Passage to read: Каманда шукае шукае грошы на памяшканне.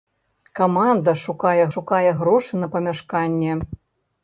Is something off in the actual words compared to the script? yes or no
no